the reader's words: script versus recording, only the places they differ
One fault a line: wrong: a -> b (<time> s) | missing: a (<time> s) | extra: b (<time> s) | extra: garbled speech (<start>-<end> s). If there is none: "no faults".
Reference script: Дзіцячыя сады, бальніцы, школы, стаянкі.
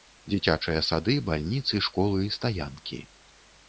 no faults